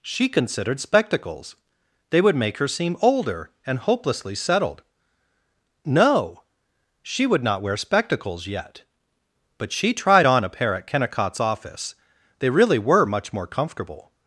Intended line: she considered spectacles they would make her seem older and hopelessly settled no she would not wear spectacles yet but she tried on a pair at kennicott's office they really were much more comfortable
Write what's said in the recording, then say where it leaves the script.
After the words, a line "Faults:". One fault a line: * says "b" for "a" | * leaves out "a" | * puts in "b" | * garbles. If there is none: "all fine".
she considered spectacles they would make her seem older and hopelessly settled no she would not wear spectacles yet but she tried on a pair at kennicott's office they really were much more comfortable
Faults:
all fine